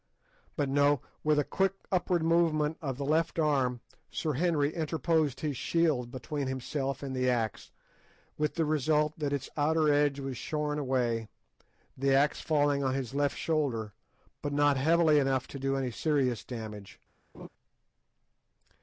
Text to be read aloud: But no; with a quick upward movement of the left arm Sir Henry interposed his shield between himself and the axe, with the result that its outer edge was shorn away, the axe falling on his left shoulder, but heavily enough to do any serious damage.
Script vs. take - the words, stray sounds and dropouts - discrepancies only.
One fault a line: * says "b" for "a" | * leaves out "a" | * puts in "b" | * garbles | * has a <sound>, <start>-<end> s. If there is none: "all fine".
* puts in "not"
* has a laugh, 17.3-17.5 s